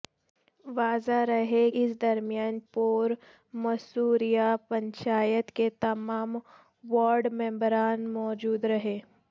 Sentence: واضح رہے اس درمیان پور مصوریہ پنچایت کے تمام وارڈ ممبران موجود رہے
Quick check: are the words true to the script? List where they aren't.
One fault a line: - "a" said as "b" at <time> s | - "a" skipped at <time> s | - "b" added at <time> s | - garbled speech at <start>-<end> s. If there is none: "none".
none